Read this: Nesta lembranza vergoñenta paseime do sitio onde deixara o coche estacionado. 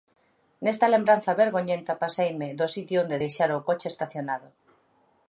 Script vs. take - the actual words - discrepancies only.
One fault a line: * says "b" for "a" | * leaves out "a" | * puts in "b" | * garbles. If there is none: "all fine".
all fine